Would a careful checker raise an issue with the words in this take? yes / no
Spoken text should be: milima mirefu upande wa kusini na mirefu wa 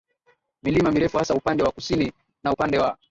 yes